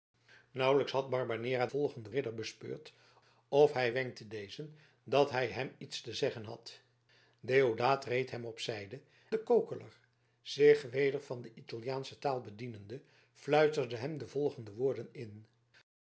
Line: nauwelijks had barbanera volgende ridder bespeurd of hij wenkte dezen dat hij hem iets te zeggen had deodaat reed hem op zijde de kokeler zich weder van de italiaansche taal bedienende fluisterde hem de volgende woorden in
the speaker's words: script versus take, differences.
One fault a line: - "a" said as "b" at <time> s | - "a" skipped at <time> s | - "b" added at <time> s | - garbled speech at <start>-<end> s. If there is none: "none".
none